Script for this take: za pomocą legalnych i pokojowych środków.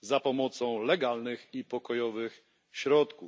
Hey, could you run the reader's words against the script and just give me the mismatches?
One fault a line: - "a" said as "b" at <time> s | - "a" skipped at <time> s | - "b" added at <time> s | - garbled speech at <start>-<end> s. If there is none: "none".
none